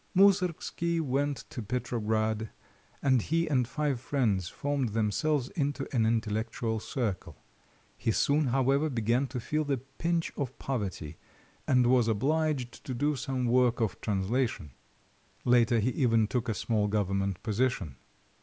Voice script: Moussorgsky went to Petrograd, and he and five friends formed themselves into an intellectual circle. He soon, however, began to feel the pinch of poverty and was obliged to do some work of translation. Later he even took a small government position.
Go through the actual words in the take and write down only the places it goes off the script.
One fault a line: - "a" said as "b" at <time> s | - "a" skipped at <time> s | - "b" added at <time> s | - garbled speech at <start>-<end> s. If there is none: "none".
none